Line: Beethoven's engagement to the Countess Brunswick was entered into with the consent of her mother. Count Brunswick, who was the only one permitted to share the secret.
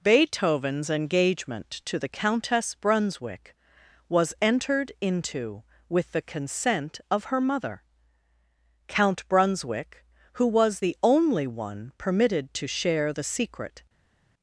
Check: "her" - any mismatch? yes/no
no